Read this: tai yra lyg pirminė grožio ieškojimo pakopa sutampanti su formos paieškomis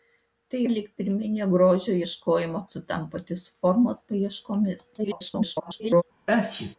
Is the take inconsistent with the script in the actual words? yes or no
yes